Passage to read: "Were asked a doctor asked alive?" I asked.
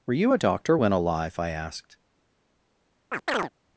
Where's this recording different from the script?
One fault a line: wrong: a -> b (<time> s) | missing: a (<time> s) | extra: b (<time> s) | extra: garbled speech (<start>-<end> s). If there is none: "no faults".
wrong: asked -> you (0.1 s)
wrong: asked -> when (0.8 s)